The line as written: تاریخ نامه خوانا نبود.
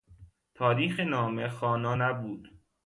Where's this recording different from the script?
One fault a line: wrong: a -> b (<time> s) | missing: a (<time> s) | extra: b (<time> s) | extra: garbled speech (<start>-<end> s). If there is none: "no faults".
no faults